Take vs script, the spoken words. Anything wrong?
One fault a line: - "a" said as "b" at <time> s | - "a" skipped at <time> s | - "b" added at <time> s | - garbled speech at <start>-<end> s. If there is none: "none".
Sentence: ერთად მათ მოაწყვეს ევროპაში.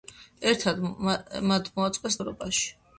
none